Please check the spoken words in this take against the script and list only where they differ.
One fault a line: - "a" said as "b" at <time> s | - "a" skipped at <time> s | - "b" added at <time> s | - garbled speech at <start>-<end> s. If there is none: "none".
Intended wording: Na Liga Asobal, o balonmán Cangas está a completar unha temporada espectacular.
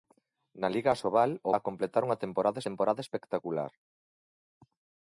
- "balonmán Cangas está" skipped at 1.5 s
- "temporada" added at 2.7 s